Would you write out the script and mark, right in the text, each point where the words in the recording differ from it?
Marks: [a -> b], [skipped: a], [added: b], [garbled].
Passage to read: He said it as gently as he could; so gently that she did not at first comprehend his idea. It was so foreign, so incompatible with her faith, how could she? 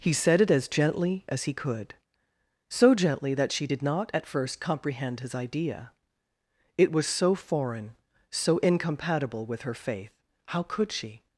He said it as gently as he could; so gently that she did not at first comprehend his idea. It was so foreign, so incompatible with her faith, how could she?